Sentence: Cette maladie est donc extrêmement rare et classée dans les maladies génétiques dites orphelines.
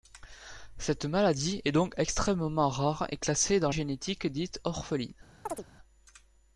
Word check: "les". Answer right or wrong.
wrong